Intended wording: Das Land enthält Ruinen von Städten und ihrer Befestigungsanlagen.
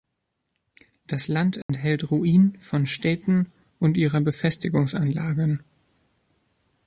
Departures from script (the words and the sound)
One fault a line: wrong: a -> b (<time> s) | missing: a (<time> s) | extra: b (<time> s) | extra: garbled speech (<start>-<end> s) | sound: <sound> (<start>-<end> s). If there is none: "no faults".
sound: dropout (1.6-1.7 s)